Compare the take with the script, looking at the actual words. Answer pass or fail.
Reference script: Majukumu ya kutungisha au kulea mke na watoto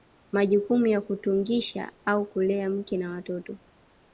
pass